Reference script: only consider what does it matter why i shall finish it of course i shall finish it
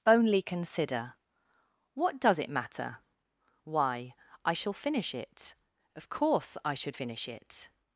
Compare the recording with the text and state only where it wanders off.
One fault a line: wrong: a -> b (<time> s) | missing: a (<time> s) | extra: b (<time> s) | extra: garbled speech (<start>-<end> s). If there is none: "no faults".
wrong: shall -> should (6.7 s)